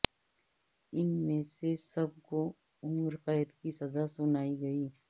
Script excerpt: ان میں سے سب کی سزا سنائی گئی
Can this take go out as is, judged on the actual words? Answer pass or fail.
fail